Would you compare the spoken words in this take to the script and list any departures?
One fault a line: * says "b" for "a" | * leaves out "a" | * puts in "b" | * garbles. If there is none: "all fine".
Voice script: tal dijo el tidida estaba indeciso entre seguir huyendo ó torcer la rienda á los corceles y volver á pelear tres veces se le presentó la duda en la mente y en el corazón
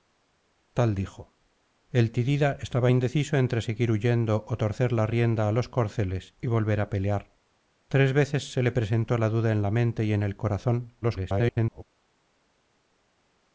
* garbles